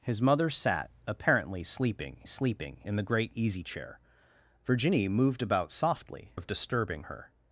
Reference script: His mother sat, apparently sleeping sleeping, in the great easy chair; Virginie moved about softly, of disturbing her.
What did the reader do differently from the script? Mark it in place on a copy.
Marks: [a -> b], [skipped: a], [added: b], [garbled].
His mother sat, apparently sleeping sleeping, in the great easy chair; Virginie moved about softly, of disturbing her.